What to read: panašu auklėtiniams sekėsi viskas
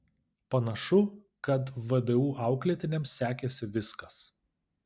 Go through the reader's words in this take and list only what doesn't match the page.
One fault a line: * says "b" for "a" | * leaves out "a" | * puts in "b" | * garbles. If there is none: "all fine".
* puts in "kad vdu"